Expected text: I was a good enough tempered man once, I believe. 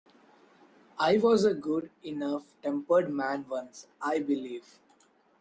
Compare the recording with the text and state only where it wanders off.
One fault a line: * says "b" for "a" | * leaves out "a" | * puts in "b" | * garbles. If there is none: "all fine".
all fine